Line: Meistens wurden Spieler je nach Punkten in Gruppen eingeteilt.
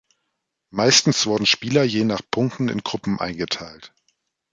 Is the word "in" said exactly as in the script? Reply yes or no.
yes